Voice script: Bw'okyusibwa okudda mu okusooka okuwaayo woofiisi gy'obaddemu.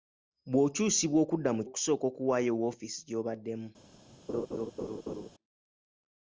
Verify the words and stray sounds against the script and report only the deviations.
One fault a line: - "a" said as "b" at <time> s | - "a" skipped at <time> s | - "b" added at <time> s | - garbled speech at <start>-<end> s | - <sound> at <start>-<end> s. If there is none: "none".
- laugh at 4.3-5.3 s